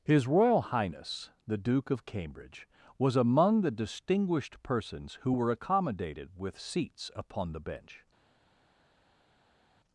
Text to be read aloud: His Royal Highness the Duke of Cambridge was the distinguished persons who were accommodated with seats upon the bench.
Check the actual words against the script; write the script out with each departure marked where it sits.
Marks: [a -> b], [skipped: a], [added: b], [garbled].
His Royal Highness the Duke of Cambridge was [added: among] the distinguished persons who were accommodated with seats upon the bench.